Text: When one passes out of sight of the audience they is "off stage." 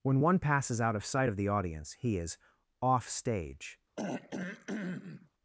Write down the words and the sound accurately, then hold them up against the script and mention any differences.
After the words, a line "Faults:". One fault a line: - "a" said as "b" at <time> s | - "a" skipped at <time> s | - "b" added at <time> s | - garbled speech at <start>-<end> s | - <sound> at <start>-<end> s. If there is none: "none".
When one passes out of sight of the audience he is "off stage."
Faults:
- "they" said as "he" at 1.9 s
- throat clearing at 4.0-5.3 s